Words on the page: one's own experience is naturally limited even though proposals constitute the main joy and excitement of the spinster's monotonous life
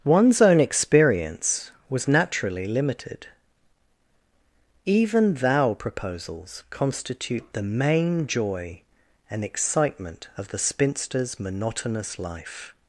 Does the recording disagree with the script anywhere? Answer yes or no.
yes